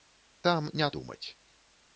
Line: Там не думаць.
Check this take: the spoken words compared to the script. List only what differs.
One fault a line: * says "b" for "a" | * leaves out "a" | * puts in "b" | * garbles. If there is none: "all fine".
all fine